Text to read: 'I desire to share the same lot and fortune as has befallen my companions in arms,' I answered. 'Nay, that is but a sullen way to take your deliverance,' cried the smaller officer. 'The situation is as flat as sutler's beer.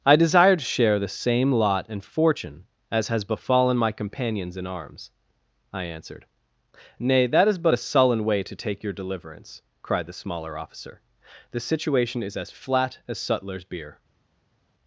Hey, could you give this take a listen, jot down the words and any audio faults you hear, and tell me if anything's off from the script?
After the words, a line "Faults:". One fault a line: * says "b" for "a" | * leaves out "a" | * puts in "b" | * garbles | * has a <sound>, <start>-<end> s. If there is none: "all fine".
'I desire to share the same lot and fortune as has befallen my companions in arms,' I answered. 'Nay, that is but a sullen way to take your deliverance,' cried the smaller officer. 'The situation is as flat as sutler's beer.
Faults:
all fine